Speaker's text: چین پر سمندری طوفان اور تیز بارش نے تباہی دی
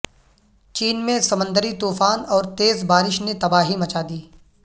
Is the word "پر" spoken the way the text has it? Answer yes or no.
no